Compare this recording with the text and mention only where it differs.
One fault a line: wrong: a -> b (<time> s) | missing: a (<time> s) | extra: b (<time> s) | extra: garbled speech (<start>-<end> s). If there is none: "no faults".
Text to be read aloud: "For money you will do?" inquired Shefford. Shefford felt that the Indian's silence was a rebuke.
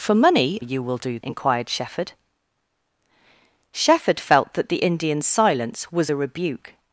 no faults